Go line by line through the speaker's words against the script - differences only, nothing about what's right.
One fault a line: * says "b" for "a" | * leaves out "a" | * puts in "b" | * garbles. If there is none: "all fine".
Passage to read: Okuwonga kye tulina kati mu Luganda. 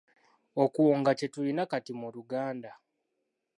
all fine